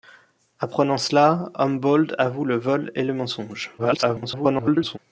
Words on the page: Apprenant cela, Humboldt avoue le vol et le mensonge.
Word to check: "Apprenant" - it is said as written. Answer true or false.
true